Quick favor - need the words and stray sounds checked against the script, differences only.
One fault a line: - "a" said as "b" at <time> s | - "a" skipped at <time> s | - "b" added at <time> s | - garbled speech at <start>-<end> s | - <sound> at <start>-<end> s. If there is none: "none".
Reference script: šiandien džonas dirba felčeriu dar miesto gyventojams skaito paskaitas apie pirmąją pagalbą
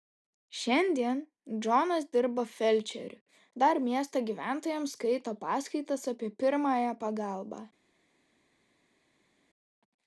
none